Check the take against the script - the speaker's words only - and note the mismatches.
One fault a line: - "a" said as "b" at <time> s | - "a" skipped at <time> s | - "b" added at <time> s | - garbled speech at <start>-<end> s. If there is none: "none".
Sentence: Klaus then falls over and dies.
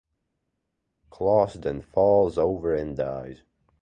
none